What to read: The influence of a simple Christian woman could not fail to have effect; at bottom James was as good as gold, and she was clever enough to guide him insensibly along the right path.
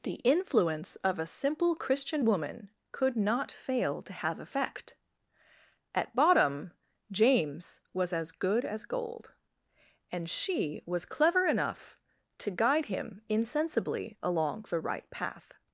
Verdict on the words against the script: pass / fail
pass